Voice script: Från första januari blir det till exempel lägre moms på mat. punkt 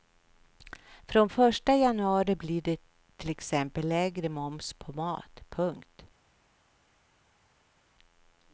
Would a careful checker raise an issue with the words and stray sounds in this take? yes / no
no